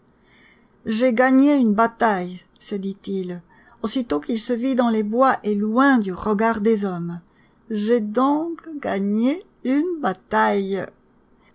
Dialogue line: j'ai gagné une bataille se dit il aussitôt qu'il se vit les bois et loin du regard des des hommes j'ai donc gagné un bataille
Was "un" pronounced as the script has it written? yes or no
no